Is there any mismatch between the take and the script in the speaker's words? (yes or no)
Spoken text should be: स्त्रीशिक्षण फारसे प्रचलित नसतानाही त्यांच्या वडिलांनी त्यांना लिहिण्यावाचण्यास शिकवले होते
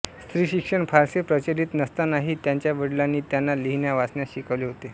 no